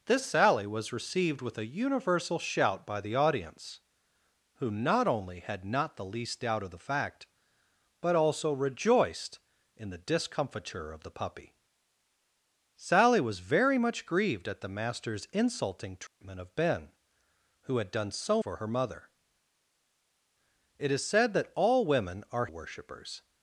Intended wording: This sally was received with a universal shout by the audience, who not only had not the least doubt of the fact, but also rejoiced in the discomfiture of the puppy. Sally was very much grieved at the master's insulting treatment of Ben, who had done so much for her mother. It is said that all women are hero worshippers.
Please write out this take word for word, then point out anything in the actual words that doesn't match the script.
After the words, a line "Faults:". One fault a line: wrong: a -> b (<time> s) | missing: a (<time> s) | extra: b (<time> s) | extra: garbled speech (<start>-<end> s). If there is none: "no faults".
This sally was received with a universal shout by the audience, who not only had not the least doubt of the fact, but also rejoiced in the discomfiture of the puppy. Sally was very much grieved at the master's insulting treatment of Ben, who had done so for her mother. It is said that all women are worshippers.
Faults:
missing: much (18.4 s)
missing: hero (22.5 s)